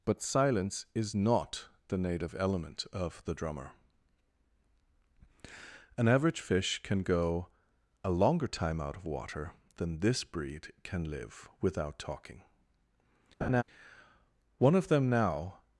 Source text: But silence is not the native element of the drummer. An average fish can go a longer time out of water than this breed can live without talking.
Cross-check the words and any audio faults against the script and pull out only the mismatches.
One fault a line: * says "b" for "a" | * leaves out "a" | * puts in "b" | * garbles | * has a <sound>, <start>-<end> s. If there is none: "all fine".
* has a laugh, 13.4-13.6 s
* puts in "One of them now"